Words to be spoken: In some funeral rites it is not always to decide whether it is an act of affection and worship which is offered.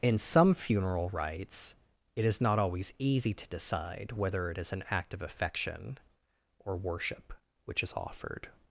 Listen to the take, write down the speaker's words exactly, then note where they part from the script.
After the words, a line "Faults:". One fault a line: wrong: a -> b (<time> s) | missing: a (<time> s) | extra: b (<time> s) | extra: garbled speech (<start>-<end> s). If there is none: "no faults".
In some funeral rites it is not always easy to decide whether it is an act of affection or worship which is offered.
Faults:
extra: easy (3.0 s)
wrong: and -> or (6.6 s)